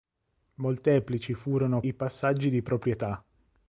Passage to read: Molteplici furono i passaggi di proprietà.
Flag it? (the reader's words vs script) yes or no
no